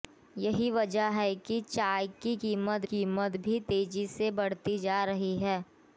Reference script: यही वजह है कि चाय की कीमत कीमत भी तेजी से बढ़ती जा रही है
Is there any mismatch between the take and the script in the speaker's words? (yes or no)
no